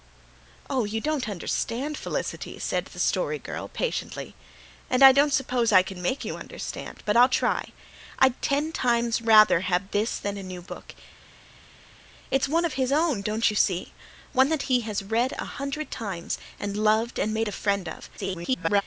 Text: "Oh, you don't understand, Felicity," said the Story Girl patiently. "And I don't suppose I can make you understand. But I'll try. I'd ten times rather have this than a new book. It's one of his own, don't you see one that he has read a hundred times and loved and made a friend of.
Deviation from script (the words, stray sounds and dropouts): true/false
true